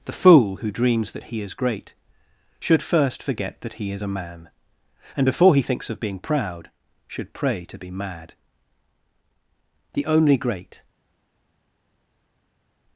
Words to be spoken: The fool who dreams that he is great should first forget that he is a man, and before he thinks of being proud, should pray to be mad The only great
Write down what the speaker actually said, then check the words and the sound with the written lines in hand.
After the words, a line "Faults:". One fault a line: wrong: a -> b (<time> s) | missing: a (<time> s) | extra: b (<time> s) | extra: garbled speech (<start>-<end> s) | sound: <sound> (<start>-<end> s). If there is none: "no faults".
The fool who dreams that he is great should first forget that he is a man, and before he thinks of being proud, should pray to be mad The only great
Faults:
no faults